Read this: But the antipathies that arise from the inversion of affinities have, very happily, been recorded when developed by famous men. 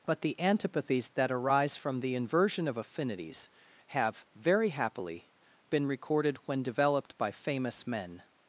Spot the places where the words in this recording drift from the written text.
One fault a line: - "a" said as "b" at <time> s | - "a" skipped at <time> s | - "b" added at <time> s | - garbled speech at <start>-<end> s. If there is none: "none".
none